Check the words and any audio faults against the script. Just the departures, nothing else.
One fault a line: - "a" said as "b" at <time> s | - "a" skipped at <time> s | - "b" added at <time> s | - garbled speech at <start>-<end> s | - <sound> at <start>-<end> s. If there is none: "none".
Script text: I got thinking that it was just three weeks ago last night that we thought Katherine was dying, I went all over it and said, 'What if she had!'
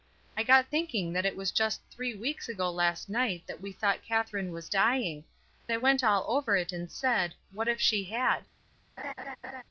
- laugh at 9.0-9.6 s